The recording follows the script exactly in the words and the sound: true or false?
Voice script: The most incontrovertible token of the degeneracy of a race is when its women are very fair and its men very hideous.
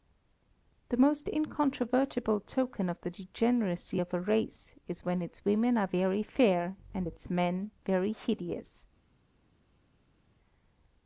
true